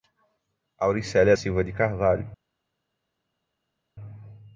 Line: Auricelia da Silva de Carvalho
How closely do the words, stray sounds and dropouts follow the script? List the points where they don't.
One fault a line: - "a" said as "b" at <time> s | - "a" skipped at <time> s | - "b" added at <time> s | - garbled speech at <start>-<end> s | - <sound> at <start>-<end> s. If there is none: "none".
- "da" skipped at 1.4 s